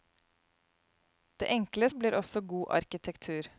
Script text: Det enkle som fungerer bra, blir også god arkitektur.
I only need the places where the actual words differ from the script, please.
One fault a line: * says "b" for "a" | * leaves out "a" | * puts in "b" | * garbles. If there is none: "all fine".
* leaves out "som fungerer bra"